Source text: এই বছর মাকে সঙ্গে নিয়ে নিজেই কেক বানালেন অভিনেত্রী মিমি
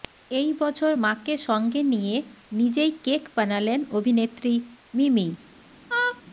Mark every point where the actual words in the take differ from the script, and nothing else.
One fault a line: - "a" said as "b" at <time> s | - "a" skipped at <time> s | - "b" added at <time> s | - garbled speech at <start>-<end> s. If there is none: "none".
none